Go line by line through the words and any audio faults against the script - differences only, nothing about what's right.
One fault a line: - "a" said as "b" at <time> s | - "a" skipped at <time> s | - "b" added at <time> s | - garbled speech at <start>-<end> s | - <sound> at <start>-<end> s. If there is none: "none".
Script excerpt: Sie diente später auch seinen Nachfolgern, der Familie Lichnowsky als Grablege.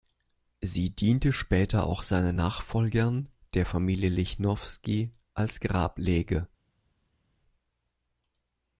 none